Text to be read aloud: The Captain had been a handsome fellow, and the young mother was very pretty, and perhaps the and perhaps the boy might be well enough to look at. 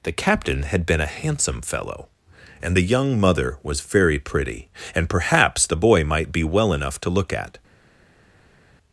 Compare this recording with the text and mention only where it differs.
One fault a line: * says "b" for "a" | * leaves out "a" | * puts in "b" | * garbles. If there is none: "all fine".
* leaves out "and perhaps the"